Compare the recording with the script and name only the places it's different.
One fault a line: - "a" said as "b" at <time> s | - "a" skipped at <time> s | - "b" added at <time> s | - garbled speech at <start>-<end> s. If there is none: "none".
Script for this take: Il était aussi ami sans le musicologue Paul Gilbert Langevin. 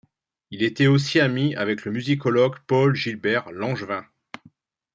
- "sans" said as "avec" at 1.5 s